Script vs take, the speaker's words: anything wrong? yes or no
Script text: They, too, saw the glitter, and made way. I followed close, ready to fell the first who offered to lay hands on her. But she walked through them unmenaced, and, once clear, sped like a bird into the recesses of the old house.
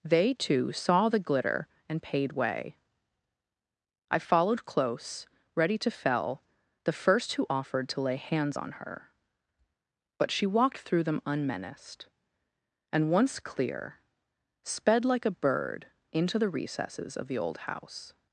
yes